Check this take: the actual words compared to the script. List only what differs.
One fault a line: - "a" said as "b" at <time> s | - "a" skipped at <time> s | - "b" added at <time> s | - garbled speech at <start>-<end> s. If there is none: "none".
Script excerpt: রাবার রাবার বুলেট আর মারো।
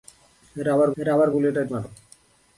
none